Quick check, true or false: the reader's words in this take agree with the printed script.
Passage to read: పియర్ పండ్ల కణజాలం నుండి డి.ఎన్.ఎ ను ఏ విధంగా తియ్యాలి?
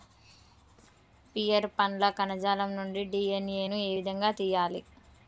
true